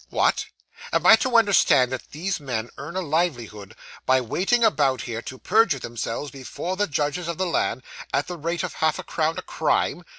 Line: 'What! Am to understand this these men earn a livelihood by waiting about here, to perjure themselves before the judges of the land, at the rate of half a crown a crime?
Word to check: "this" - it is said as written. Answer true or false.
false